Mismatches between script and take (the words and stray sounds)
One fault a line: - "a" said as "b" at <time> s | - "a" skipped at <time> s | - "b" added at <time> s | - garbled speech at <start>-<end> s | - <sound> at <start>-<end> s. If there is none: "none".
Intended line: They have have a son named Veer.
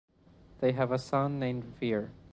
- "have" skipped at 0.9 s